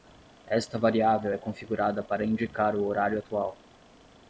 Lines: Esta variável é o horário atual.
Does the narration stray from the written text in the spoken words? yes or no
yes